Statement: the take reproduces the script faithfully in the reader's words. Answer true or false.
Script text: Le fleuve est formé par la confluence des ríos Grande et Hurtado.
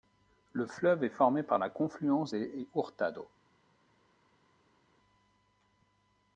false